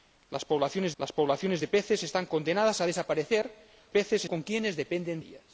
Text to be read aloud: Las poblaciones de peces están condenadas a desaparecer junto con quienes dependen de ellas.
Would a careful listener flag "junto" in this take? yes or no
yes